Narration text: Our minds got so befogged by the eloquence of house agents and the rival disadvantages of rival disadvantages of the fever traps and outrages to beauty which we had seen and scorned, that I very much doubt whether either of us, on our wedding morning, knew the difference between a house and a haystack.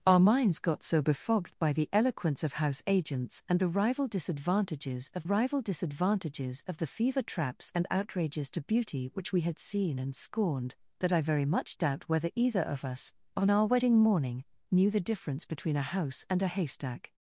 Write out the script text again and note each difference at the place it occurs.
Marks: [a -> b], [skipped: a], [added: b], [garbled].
Our minds got so befogged by the eloquence of house agents and the rival disadvantages of rival disadvantages of the fever traps and outrages to beauty which we had seen and scorned, that I very much doubt whether either of us, on our wedding morning, knew the difference between a house and a haystack.